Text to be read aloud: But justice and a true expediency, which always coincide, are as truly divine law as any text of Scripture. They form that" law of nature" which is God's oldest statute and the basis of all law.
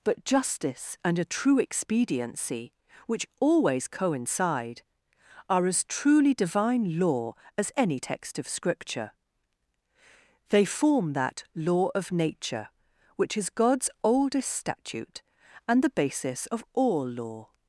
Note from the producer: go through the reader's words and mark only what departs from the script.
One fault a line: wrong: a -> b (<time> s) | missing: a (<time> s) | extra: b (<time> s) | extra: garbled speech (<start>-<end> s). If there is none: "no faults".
no faults